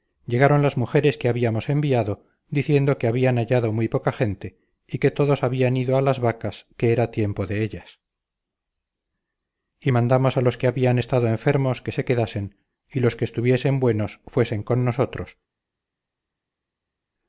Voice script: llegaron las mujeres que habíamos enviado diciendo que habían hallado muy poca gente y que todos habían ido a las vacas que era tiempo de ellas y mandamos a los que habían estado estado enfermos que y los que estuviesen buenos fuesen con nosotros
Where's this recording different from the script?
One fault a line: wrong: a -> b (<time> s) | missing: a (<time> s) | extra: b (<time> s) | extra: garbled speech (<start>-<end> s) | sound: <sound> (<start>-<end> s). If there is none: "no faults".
missing: estado (11.3 s)
extra: se quedasen (11.9 s)